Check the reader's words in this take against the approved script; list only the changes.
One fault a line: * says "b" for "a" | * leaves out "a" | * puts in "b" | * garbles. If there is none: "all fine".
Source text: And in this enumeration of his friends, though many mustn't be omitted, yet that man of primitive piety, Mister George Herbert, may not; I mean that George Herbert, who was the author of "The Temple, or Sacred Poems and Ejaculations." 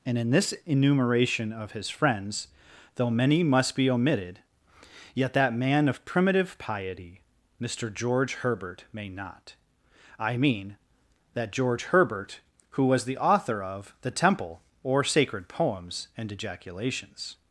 * says "must" for "mustn't"